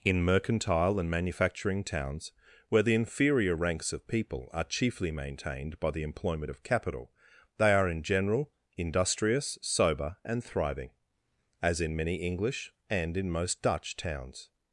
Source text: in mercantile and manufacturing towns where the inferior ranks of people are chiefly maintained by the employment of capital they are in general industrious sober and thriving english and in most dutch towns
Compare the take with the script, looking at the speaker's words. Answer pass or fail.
fail